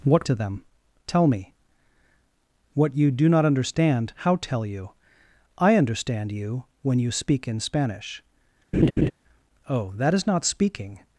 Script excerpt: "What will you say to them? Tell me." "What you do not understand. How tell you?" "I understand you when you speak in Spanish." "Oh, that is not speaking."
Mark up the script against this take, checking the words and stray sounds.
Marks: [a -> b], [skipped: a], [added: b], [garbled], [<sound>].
"What [skipped: will you say] to them? Tell me." "What you do not understand. How tell you?" "I understand you when you speak in Spanish." [laugh] "Oh, that is not speaking."